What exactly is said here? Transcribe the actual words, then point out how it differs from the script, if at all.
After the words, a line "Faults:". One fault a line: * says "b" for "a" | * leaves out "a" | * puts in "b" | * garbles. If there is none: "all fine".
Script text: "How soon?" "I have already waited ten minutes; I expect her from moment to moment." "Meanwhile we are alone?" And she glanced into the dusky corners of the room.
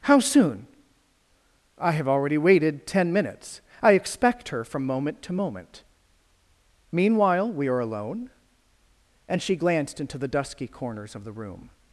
"How soon?" "I have already waited ten minutes; I expect her from moment to moment." "Meanwhile we are alone?" And she glanced into the dusky corners of the room.
Faults:
all fine